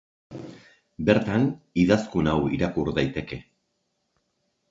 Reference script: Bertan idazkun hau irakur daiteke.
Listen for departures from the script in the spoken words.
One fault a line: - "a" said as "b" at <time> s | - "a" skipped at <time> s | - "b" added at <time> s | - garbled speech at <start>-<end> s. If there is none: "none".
none